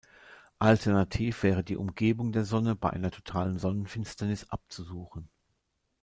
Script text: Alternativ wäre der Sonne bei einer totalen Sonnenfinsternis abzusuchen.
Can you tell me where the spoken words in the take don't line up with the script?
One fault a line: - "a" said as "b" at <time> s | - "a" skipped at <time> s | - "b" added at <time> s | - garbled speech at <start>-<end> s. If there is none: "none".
- "die Umgebung" added at 1.6 s